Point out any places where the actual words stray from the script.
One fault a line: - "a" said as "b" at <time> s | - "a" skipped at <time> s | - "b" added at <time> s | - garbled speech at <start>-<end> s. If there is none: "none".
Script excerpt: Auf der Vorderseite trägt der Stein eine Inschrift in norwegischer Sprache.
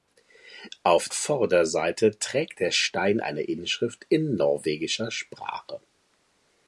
- "der" skipped at 1.1 s